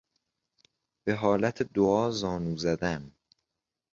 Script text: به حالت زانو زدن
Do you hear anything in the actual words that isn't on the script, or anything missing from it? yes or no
yes